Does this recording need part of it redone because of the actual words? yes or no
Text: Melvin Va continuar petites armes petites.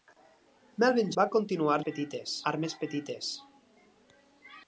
no